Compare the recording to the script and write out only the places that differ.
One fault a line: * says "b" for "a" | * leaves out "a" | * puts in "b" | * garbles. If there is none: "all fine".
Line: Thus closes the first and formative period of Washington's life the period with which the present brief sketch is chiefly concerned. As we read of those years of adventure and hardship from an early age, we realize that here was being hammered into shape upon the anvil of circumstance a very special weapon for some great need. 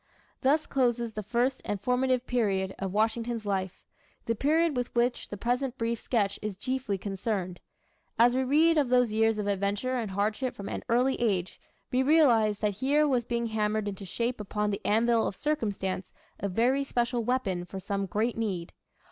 all fine